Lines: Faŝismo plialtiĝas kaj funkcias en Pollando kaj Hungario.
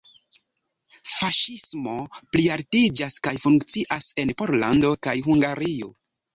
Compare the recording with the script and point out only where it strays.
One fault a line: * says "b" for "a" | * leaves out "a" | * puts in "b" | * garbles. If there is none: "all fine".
all fine